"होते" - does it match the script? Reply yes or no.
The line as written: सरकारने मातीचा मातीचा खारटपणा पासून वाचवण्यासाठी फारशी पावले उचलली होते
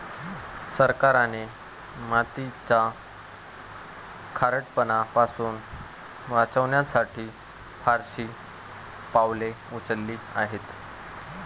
no